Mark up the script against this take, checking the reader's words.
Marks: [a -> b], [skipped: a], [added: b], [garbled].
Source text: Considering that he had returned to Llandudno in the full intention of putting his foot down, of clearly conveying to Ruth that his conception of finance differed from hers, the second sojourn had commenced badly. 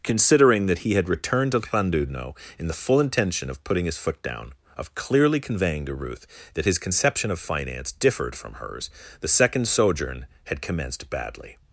Considering that he had returned to Llandudno in the full intention of putting his foot down, of clearly conveying to Ruth that his conception of finance differed from hers, the second sojourn had commenced badly.